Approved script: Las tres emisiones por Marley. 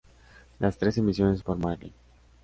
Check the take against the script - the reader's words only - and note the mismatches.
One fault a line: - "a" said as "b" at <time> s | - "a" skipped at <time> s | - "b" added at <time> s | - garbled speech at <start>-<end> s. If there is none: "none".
none